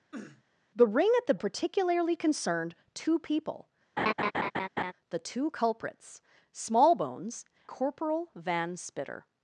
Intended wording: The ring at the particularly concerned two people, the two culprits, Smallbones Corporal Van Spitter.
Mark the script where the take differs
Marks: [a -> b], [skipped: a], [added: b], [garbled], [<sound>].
[sniff] The ring at the particularly concerned two people, [laugh] the two culprits, Smallbones Corporal Van Spitter.